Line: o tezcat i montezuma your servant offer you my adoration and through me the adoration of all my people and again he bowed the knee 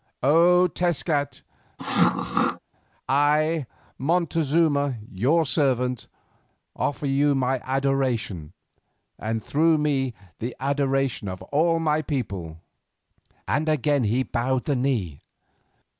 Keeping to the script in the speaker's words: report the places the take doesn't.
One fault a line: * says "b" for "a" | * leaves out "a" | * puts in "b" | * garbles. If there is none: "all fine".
all fine